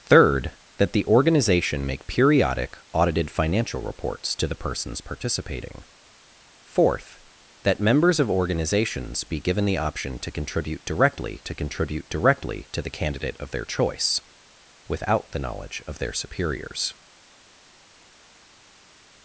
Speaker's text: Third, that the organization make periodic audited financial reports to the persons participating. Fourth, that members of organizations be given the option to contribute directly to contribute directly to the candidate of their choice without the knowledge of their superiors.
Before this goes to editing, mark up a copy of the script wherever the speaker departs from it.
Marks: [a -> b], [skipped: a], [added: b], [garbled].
Third, that the organization make periodic audited financial reports to the persons participating. Fourth, that members of organizations be given the option to contribute directly to contribute directly to the candidate of their choice without the knowledge of their superiors.